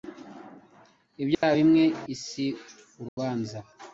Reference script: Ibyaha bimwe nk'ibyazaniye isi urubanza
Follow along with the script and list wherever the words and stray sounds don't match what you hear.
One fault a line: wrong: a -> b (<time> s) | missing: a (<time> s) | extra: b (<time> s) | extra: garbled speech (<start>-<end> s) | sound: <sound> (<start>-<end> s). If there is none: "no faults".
sound: dropout (1.3-1.4 s)
missing: nk'ibyazaniye (1.8 s)
sound: dropout (3.1-3.2 s)